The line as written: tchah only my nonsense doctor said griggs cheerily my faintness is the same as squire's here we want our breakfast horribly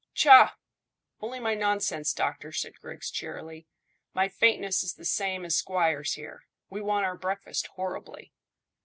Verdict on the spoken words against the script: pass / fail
pass